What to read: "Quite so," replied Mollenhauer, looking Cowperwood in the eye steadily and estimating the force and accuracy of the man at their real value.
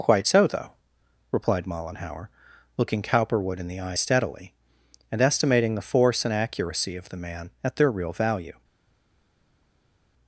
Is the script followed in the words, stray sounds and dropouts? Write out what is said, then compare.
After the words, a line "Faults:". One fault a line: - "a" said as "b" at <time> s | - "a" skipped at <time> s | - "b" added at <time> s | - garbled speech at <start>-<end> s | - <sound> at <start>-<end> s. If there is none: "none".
"Quite so," though replied Mollenhauer, looking Cowperwood in the eye steadily and estimating the force and accuracy of the man at their real value.
Faults:
- "though" added at 0.5 s